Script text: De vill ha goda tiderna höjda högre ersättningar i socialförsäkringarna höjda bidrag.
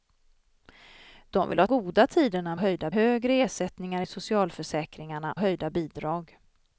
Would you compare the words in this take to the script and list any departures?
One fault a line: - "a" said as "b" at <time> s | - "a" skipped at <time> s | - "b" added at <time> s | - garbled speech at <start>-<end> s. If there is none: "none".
none